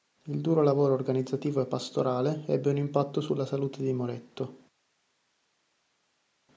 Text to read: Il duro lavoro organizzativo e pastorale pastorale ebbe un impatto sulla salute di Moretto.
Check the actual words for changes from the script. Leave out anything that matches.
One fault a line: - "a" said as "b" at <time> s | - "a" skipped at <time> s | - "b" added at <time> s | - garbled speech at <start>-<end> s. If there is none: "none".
- "pastorale" skipped at 2.5 s